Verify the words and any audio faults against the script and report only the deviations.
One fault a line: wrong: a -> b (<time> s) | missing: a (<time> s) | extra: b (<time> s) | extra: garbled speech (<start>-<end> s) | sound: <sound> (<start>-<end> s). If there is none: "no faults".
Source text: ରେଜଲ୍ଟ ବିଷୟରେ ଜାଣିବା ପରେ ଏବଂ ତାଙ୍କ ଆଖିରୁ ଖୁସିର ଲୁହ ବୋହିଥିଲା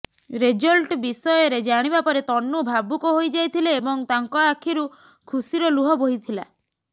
extra: ତନୁ ଭାବୁକ ହୋଇଯାଇଥିଲେ (2.2 s)